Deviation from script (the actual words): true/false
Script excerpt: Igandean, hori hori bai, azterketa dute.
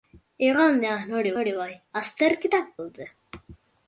false